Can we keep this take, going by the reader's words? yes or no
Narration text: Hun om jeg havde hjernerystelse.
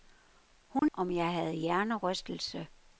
yes